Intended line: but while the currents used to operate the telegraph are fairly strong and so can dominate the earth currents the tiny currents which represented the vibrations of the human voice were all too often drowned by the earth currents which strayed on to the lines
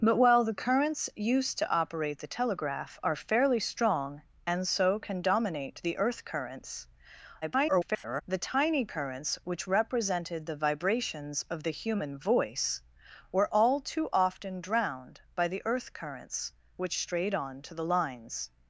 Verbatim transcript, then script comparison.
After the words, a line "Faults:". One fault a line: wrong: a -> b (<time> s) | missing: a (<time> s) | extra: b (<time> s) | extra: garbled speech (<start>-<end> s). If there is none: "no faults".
but while the currents used to operate the telegraph are fairly strong and so can dominate the earth currents [garbled] the tiny currents which represented the vibrations of the human voice were all too often drowned by the earth currents which strayed on to the lines
Faults:
extra: garbled speech (7.4-8.2 s)